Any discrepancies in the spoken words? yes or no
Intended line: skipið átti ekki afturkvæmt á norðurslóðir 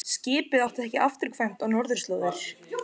no